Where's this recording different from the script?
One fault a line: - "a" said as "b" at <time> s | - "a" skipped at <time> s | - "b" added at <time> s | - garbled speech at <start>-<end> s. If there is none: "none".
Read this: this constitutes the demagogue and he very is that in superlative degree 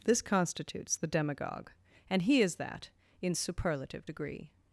- "very" skipped at 2.4 s